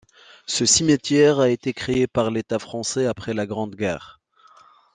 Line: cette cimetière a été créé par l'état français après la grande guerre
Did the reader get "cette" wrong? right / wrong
wrong